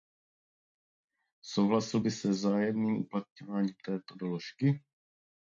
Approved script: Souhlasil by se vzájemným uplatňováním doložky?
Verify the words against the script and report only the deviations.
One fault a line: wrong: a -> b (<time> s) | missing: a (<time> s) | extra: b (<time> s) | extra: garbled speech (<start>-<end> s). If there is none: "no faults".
extra: této (3.9 s)